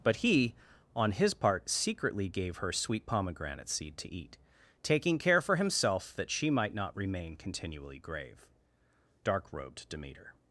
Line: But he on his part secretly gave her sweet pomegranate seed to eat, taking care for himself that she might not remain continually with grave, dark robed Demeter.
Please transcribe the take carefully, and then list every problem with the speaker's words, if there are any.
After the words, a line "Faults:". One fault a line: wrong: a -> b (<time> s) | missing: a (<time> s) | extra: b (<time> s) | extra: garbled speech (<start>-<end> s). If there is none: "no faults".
But he on his part secretly gave her sweet pomegranate seed to eat, taking care for himself that she might not remain continually grave, dark robed Demeter.
Faults:
missing: with (8.0 s)